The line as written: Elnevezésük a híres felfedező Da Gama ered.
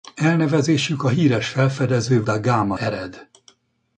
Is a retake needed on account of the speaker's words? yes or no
no